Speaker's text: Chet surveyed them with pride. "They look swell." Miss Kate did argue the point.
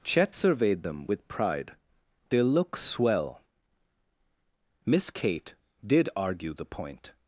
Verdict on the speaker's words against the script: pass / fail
pass